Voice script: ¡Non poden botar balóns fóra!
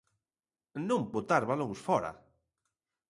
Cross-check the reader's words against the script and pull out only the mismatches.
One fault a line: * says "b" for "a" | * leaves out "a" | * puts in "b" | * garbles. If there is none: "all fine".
* leaves out "poden"